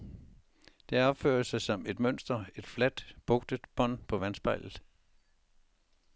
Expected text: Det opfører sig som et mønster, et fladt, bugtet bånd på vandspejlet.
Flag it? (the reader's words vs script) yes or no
no